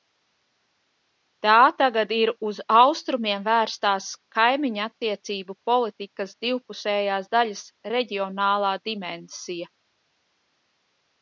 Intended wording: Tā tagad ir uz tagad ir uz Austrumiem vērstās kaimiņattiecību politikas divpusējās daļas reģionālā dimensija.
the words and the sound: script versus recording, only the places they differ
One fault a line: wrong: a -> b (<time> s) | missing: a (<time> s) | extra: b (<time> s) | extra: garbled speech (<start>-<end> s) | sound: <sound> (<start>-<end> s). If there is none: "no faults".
missing: tagad ir uz (2.6 s)